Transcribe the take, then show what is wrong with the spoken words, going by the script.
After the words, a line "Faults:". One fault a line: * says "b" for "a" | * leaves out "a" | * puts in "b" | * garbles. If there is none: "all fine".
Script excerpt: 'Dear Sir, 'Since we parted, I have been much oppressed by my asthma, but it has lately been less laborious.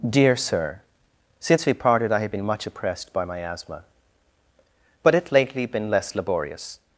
'Dear Sir, 'Since we parted, I have been much oppressed by my asthma, but it lately been less laborious.
Faults:
* leaves out "has"